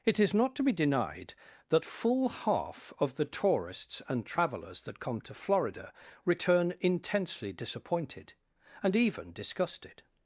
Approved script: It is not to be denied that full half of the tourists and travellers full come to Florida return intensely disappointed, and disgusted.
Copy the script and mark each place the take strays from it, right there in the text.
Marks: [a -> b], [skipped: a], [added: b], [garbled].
It is not to be denied that full half of the tourists and travellers [full -> that] come to Florida return intensely disappointed, and [added: even] disgusted.